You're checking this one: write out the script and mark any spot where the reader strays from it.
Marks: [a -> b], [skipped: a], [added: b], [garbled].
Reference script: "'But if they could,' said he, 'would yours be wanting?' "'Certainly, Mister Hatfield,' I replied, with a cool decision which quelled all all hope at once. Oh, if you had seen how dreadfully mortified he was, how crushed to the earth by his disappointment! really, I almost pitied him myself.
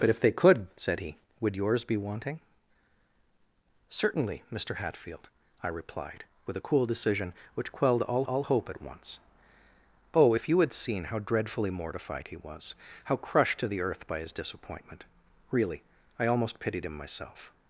"'But if they could,' said he, 'would yours be wanting?' "'Certainly, Mister Hatfield,' I replied, with a cool decision which quelled all all hope at once. Oh, if you had seen how dreadfully mortified he was, how crushed to the earth by his disappointment! really, I almost pitied him myself.